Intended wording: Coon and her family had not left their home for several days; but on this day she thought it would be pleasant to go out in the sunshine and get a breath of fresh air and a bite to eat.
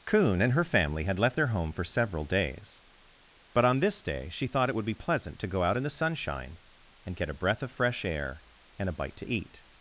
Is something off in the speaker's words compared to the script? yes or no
yes